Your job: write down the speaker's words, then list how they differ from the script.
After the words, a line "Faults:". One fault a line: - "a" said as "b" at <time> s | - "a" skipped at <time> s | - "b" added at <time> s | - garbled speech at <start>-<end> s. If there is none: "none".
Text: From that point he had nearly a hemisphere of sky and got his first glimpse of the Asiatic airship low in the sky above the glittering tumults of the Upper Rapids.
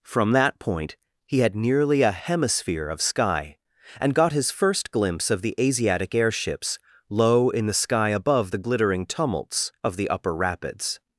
From that point he had nearly a hemisphere of sky and got his first glimpse of the Asiatic airships low in the sky above the glittering tumults of the Upper Rapids.
Faults:
- "airship" said as "airships" at 6.1 s